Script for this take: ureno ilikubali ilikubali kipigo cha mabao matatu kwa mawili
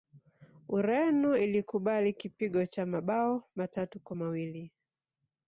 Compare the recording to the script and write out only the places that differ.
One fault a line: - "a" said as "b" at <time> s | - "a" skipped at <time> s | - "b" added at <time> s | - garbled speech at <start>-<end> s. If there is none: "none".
- "ilikubali" skipped at 2.1 s